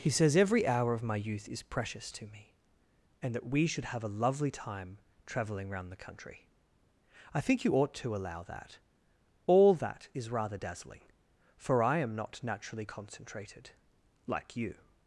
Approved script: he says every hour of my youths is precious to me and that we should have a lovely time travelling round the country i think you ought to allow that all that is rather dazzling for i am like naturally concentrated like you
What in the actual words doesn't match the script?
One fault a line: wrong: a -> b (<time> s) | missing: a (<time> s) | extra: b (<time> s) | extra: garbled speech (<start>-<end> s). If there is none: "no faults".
wrong: youths -> youth (1.1 s)
wrong: like -> not (12.1 s)